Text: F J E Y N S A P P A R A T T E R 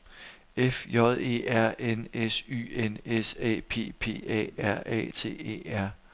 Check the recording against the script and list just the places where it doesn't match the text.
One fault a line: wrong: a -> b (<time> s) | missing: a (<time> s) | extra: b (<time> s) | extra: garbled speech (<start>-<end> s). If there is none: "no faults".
extra: R N S (1.5 s)
missing: T (5.3 s)